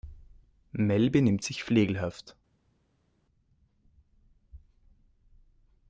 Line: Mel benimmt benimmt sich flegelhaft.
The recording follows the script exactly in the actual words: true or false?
false